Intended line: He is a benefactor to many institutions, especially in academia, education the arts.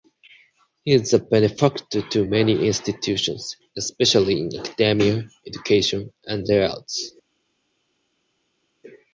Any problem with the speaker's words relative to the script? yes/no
yes